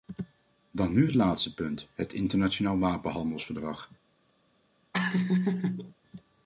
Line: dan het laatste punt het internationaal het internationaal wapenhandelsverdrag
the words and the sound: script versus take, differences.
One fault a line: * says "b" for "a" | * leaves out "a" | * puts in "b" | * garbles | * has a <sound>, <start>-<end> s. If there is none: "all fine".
* puts in "nu"
* leaves out "het internationaal"
* has a laugh, 4.9-5.9 s